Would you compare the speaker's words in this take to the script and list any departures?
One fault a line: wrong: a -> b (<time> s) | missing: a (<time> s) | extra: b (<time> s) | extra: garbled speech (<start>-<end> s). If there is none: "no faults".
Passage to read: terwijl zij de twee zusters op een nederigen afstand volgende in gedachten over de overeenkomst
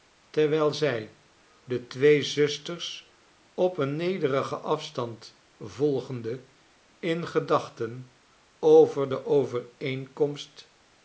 no faults